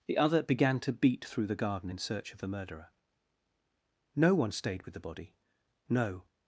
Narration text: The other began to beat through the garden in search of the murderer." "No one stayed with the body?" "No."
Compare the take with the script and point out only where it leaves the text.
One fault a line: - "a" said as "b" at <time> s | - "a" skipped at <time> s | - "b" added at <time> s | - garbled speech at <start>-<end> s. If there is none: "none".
none